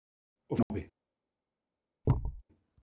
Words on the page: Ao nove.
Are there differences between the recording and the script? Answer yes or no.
no